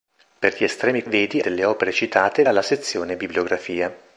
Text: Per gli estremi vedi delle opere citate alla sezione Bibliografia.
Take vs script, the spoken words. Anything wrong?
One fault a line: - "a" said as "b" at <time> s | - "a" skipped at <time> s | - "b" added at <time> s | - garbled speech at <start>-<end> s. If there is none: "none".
none